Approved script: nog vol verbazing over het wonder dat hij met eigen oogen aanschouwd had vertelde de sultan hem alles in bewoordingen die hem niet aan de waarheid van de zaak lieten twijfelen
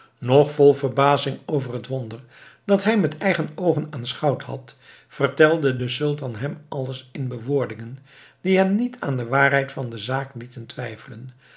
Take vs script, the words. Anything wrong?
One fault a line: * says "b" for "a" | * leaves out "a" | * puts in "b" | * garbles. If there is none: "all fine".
all fine